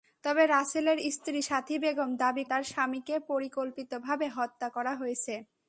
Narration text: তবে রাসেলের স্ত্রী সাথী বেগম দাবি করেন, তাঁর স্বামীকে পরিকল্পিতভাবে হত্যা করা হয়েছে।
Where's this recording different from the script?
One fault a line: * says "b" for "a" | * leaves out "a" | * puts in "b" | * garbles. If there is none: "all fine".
* leaves out "করেন"